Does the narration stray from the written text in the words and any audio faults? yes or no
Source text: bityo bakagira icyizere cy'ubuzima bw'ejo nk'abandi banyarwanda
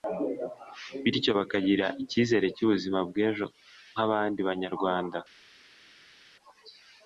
no